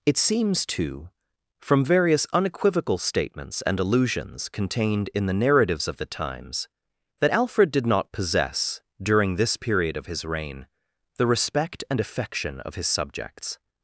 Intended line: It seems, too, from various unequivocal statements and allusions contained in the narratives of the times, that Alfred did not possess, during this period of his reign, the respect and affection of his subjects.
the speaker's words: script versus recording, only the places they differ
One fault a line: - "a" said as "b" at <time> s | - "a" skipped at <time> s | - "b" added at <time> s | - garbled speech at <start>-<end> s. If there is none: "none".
none